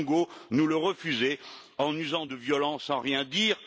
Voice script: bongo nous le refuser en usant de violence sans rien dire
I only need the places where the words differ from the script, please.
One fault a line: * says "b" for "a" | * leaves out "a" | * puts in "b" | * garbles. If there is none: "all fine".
all fine